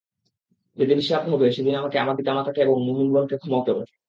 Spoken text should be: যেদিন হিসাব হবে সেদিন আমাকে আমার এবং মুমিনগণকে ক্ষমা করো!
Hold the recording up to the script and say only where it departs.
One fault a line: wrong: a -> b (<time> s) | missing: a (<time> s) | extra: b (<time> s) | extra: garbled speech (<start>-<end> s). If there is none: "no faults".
extra: পিতামাতাকে (2.2 s)